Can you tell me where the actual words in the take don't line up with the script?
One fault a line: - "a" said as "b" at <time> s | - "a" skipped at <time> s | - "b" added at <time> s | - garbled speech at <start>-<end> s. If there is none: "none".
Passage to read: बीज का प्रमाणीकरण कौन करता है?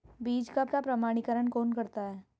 - "का" added at 0.7 s